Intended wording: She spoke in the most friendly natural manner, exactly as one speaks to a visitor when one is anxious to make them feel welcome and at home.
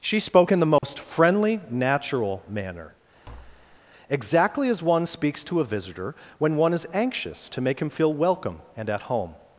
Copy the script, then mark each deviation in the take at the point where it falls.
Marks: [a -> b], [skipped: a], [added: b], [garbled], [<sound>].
She spoke in the most [dropout] friendly natural manner, [tap] exactly as one speaks to a visitor when one is anxious to make [them -> him] feel welcome and at home.